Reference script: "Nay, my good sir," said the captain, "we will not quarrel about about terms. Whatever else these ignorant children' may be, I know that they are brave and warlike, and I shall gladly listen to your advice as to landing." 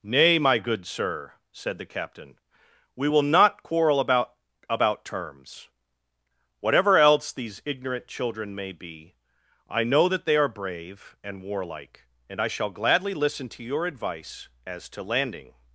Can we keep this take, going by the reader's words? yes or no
yes